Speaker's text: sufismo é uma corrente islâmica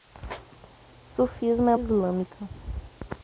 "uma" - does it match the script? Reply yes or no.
no